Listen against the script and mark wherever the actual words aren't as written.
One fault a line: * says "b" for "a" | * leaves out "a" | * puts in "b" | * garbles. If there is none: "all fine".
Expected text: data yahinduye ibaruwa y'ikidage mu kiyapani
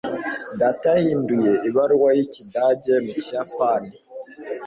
all fine